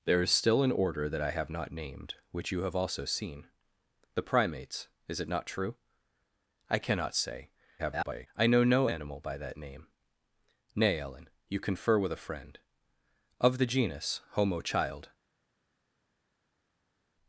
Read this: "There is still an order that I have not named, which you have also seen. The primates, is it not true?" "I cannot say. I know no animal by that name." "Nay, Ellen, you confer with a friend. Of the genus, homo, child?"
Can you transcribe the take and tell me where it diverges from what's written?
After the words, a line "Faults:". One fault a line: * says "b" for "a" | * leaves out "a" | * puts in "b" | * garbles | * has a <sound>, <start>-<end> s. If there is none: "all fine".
"There is still an order that I have not named, which you have also seen. The primates, is it not true?" "I cannot say. [garbled] I know no animal by that name." "Nay, Ellen, you confer with a friend. Of the genus, homo, child?"
Faults:
* garbles